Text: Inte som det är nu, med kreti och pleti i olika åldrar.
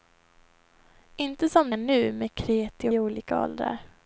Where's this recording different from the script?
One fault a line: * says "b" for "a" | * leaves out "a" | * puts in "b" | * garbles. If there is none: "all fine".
* leaves out "det"
* leaves out "och pleti"